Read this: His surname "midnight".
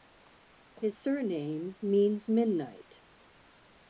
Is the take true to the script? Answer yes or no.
no